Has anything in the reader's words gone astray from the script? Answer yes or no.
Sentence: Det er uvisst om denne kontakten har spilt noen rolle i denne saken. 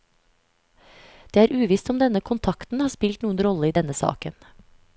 no